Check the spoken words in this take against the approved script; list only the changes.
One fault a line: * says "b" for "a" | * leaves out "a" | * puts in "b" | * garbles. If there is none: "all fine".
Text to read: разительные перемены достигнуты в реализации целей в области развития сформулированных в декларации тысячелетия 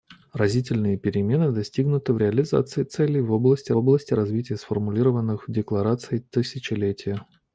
* puts in "области"